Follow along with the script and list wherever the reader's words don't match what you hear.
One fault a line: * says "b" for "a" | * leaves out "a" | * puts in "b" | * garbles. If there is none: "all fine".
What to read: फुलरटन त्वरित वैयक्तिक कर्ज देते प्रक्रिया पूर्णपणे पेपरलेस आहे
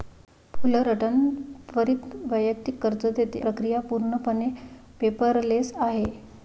all fine